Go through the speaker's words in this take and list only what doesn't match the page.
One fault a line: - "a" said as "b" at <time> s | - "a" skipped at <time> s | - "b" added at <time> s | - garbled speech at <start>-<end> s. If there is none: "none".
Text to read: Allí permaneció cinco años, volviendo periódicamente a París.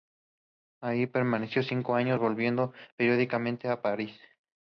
none